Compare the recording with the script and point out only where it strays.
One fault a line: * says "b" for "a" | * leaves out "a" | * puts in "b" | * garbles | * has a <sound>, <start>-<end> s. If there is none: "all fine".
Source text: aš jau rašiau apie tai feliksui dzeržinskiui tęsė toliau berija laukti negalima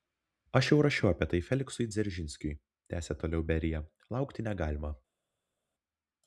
all fine